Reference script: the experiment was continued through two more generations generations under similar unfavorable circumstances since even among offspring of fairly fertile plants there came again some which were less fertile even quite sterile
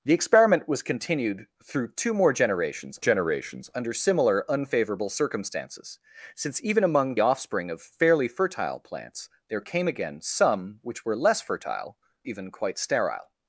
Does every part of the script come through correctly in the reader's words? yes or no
yes